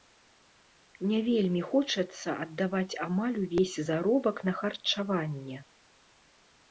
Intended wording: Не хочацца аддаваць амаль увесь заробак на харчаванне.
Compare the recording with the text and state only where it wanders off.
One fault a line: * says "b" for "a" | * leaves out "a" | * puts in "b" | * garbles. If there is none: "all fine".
* puts in "вельмі"